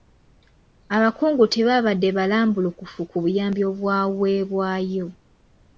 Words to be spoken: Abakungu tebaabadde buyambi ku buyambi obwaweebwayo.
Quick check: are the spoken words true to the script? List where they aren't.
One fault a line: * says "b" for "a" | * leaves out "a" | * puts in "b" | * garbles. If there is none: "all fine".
* says "balambulukufu" for "buyambi"